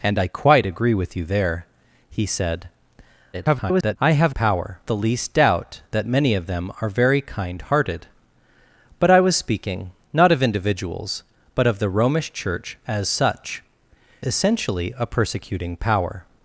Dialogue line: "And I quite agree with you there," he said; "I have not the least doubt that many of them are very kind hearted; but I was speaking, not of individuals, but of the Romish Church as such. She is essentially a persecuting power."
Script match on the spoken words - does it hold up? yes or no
no